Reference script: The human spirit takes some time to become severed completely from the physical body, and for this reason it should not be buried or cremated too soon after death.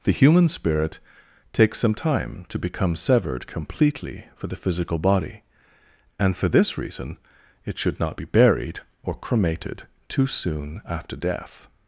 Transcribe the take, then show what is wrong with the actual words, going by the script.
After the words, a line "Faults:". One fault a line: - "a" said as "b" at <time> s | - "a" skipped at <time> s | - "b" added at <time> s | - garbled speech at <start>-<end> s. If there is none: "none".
The human spirit takes some time to become severed completely for the physical body, and for this reason it should not be buried or cremated too soon after death.
Faults:
- "from" said as "for" at 4.3 s